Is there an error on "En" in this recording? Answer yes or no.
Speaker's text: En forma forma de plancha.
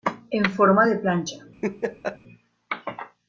no